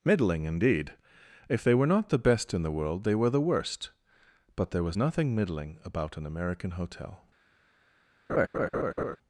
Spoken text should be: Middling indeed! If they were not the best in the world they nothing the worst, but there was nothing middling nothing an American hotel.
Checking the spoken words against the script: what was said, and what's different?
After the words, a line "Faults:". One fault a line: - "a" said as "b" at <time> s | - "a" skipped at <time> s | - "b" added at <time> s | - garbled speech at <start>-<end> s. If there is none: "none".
Middling indeed! If they were not the best in the world they were the worst, but there was nothing middling about an American hotel.
Faults:
- "nothing" said as "were" at 3.1 s
- "nothing" said as "about" at 5.8 s